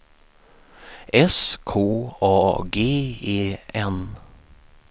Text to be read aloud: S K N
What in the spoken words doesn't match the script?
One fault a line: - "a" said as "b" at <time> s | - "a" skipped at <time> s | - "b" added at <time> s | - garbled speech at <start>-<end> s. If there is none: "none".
- "A G E" added at 2.2 s